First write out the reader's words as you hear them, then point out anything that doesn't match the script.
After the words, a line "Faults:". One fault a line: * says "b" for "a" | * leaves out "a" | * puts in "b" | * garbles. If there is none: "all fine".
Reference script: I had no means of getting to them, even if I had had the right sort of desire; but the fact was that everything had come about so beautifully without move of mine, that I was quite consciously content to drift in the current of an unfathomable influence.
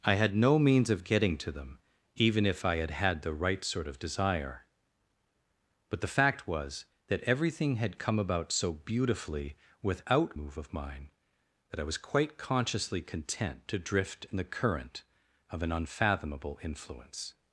I had no means of getting to them, even if I had had the right sort of desire; but the fact was that everything had come about so beautifully without move of mine, that I was quite consciously content to drift in the current of an unfathomable influence.
Faults:
all fine